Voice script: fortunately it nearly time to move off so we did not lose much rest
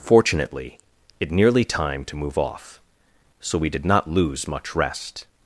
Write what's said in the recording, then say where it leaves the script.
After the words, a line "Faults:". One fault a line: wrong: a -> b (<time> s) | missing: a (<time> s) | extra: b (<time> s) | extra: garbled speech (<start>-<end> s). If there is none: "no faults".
fortunately it nearly time to move off so we did not lose much rest
Faults:
no faults